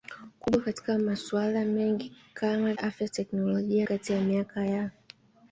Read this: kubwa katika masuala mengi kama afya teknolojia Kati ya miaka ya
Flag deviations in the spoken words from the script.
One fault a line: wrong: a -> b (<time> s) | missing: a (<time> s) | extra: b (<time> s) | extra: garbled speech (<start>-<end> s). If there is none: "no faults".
no faults